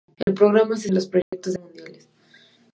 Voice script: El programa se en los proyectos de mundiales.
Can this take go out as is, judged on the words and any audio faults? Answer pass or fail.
fail